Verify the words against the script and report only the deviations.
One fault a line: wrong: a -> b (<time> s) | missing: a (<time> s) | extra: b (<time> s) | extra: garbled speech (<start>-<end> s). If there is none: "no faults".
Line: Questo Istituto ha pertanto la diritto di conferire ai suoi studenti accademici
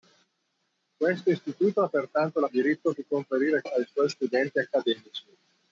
no faults